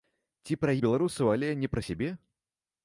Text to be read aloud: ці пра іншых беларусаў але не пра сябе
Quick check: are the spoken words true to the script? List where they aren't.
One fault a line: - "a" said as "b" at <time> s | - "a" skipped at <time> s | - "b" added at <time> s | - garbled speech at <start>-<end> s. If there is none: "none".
- "іншых" skipped at 0.7 s